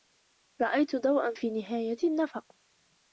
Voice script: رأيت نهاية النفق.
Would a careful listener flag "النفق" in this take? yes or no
no